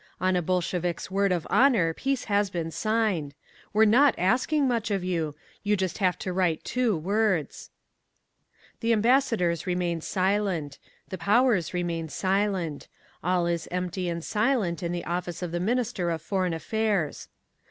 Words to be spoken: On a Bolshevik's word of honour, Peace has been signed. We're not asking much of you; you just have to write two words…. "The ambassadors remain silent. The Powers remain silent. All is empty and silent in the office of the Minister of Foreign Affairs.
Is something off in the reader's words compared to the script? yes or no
no